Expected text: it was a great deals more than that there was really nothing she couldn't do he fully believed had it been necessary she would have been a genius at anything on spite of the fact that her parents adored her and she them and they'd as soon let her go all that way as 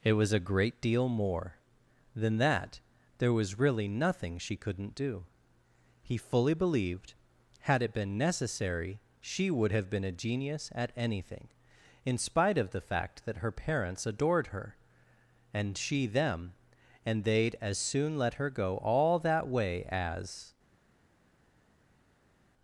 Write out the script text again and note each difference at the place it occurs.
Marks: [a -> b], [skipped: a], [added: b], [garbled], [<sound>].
it was a great [deals -> deal] more than that there was really nothing she couldn't do he fully believed had it been necessary she would have been a genius at anything [on -> in] spite of the fact that her parents adored her and she them and they'd as soon let her go all that way as